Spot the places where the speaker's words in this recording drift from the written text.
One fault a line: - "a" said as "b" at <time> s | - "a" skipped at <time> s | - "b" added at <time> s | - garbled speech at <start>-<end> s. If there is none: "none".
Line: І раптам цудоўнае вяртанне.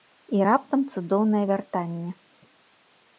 none